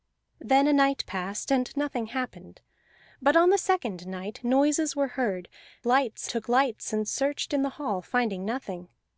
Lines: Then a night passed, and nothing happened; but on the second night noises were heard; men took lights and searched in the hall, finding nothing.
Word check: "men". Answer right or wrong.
wrong